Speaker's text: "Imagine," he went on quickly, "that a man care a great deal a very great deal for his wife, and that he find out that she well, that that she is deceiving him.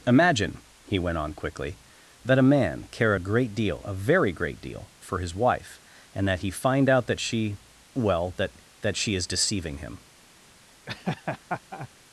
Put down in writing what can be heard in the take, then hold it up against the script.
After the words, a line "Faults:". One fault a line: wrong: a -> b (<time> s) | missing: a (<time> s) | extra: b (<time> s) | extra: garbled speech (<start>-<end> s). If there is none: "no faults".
"Imagine," he went on quickly, "that a man care a great deal a very great deal for his wife, and that he find out that she well, that that she is deceiving him.
Faults:
no faults